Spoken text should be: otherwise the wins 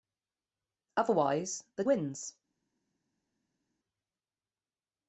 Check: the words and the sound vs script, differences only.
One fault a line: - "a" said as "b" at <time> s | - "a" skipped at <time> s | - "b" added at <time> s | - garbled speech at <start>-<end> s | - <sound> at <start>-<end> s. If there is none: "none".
none